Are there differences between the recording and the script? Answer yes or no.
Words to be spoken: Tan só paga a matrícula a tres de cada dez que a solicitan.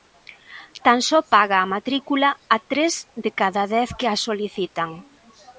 no